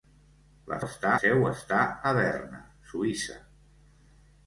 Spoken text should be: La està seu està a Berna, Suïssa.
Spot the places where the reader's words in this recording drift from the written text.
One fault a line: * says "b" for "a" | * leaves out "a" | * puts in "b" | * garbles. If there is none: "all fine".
all fine